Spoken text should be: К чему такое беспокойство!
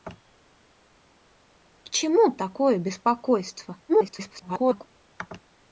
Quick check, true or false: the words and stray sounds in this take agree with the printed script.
false